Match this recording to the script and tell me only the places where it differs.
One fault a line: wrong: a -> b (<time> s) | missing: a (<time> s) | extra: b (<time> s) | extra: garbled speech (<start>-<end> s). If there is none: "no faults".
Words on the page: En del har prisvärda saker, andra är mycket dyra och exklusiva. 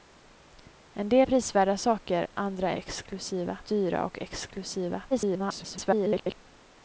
missing: har (1.3 s)
wrong: mycket -> exklusiva (2.8 s)
extra: garbled speech (5.1-6.4 s)